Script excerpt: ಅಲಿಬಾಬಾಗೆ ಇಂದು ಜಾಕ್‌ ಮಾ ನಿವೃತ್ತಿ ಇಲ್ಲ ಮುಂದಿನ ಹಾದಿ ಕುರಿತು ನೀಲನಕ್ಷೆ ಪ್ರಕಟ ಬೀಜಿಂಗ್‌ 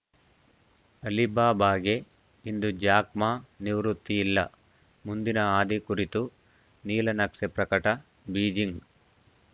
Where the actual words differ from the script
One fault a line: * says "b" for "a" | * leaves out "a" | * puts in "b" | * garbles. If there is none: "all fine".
all fine